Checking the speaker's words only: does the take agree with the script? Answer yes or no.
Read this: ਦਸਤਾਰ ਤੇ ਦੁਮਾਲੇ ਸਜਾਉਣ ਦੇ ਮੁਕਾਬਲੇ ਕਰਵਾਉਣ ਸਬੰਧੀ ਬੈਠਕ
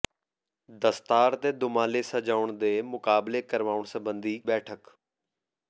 yes